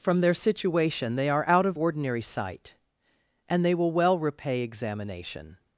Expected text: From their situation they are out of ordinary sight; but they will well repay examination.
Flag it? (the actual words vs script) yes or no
yes